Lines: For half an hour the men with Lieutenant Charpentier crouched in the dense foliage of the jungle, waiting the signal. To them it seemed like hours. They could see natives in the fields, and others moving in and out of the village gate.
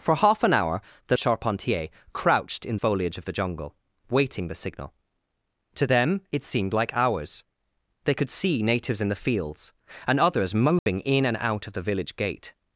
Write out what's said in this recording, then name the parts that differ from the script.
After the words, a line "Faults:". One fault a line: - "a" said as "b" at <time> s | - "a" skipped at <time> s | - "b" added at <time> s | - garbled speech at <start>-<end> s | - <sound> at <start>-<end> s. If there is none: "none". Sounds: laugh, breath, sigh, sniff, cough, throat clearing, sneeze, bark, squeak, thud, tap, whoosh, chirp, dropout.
For half an hour the Charpentier crouched in foliage of the jungle, waiting the signal. To them it seemed like hours. They could see natives in the fields, and others moving in and out of the village gate.
Faults:
- "men with Lieutenant" skipped at 1.2 s
- "the dense" skipped at 2.8 s
- dropout at 10.8-10.9 s